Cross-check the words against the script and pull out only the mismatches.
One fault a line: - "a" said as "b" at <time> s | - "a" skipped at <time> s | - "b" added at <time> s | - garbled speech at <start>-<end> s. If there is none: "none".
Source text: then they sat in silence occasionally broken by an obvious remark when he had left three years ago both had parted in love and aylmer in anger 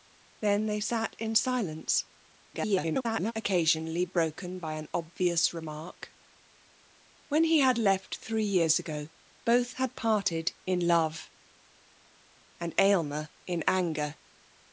- garbled speech at 2.5-3.3 s